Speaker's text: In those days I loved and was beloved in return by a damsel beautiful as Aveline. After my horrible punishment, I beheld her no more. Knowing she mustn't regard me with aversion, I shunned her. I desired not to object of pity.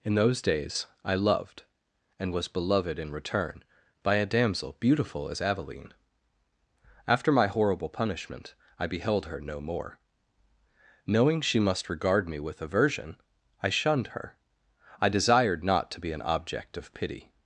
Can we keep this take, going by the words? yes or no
no